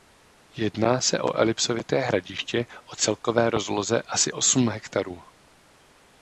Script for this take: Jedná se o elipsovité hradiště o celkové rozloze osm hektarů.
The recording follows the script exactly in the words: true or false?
false